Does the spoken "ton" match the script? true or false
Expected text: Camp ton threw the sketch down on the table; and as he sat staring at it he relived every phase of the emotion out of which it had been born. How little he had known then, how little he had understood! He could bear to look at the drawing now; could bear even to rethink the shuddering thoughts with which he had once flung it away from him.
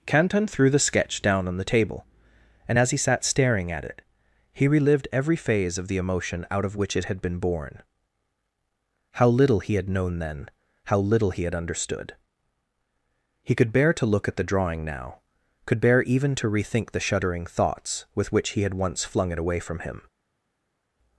false